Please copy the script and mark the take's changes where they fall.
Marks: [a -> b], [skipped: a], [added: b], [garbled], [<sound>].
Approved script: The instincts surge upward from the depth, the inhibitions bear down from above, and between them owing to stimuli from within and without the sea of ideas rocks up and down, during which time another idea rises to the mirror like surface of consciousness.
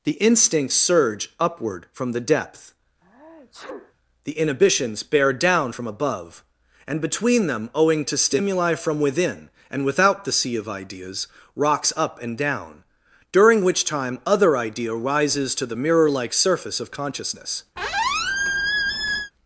The instincts surge upward from the depth, [sneeze] the inhibitions bear down from above, and between them owing to stimuli from within and without the sea of ideas rocks up and down, during which time [another -> other] idea rises to the mirror like surface of consciousness. [squeak]